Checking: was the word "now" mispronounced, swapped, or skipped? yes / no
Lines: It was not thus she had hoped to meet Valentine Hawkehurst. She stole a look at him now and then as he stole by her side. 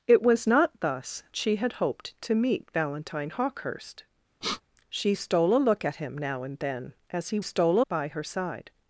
no